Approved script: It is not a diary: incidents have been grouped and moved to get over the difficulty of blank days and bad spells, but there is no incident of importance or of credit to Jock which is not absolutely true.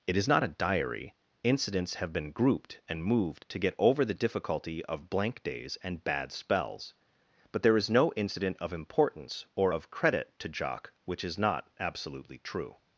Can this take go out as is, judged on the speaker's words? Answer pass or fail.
pass